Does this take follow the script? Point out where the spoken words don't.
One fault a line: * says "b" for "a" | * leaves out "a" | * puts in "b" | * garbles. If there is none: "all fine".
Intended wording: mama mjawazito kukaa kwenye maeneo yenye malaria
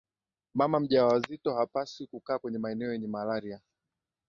* puts in "hapaswi"